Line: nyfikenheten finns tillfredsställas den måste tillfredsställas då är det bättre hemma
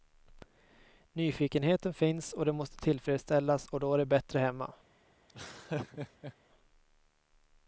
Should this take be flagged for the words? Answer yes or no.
yes